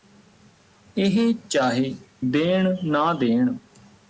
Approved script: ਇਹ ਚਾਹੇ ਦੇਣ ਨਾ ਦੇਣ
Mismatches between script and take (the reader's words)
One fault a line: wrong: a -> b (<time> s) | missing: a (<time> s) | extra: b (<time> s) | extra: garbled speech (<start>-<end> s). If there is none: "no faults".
no faults